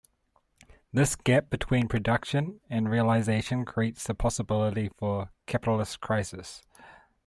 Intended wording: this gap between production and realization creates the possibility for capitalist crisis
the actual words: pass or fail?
pass